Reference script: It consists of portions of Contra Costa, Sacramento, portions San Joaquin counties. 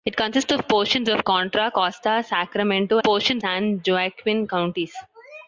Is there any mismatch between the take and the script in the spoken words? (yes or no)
no